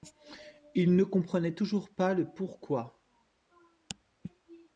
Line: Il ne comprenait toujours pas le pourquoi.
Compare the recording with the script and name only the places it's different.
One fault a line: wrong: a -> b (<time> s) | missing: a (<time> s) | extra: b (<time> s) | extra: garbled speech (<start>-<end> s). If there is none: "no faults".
no faults